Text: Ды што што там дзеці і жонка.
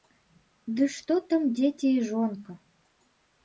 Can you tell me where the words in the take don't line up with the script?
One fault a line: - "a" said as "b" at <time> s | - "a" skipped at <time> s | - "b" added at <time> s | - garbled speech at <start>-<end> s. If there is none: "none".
- "што" skipped at 1.2 s